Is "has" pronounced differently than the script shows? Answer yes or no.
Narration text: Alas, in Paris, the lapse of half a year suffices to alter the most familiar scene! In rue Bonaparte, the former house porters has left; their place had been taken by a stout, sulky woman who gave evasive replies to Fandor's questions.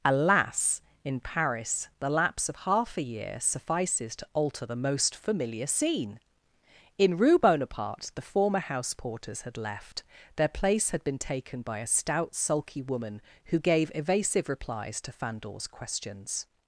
yes